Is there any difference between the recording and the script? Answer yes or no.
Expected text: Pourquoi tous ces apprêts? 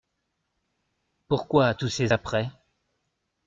no